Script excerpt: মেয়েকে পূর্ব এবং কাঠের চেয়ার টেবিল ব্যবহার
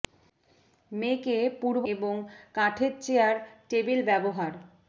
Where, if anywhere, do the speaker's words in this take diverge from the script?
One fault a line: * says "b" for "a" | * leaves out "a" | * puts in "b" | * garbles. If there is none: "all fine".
all fine